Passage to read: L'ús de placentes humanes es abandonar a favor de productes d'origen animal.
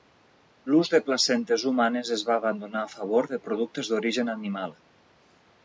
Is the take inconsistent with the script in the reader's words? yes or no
yes